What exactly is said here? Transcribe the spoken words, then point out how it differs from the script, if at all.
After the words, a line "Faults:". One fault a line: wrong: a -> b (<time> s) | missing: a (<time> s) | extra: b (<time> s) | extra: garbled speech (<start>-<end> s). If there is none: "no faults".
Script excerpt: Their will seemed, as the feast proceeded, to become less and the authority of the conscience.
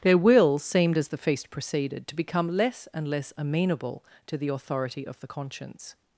Their will seemed, as the feast proceeded, to become less and less amenable to the authority of the conscience.
Faults:
extra: less amenable to (3.1 s)